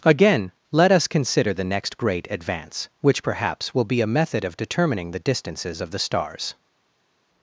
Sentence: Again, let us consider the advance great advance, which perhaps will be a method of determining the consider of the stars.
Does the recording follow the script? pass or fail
fail